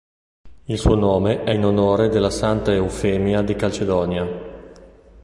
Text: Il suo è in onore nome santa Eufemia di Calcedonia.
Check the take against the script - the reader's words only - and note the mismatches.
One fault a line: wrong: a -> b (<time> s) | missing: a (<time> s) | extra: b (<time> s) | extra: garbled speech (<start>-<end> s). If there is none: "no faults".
extra: nome (0.9 s)
wrong: nome -> della (2.1 s)